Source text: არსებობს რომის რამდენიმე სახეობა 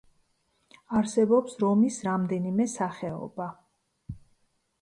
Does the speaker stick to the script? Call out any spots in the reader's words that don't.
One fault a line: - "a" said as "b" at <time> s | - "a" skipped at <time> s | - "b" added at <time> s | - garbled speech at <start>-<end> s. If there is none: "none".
none